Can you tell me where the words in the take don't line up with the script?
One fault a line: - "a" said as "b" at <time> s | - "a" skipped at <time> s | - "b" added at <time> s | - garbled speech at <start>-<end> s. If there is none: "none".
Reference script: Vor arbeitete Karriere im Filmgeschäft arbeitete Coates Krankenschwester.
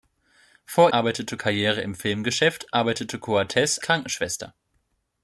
none